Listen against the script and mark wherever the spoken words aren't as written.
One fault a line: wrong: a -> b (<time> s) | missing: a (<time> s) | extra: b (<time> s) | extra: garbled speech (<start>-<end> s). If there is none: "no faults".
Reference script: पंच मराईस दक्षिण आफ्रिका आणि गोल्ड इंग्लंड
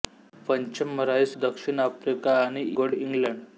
no faults